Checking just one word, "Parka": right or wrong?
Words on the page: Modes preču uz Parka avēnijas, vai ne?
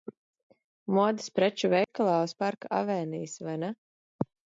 right